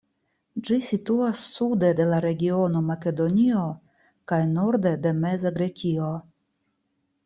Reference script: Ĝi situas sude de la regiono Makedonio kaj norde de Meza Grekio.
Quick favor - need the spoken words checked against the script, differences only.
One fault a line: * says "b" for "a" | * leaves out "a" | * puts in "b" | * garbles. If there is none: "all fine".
all fine